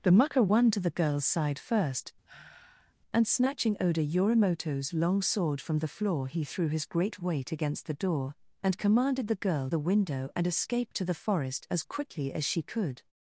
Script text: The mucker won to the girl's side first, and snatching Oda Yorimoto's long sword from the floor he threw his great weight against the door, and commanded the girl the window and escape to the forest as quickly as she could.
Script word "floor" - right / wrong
right